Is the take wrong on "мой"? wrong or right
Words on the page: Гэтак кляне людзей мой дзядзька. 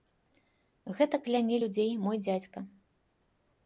right